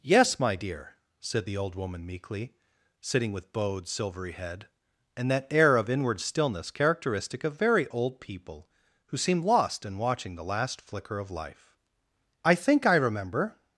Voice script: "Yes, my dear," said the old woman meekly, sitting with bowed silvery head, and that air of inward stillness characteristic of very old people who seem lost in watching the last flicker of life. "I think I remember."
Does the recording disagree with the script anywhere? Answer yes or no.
no